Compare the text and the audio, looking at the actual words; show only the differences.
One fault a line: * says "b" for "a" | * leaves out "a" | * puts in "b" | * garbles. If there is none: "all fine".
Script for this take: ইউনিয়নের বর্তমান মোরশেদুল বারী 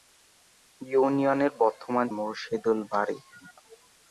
all fine